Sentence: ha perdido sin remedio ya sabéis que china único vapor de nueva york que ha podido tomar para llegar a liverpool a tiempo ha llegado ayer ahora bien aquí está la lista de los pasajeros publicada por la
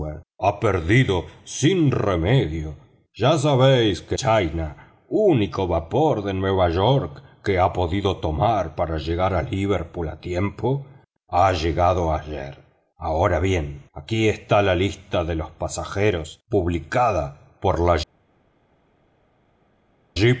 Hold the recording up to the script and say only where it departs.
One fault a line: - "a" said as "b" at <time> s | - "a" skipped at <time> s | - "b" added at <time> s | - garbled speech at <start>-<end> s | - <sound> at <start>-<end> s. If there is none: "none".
none